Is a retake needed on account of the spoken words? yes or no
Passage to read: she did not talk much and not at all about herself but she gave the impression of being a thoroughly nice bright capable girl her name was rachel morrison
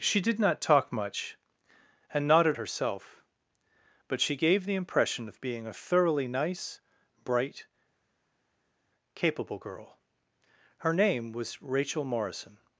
yes